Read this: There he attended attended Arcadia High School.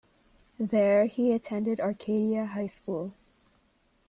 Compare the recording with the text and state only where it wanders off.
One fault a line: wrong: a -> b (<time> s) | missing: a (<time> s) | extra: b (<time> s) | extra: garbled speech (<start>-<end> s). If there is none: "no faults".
missing: attended (1.8 s)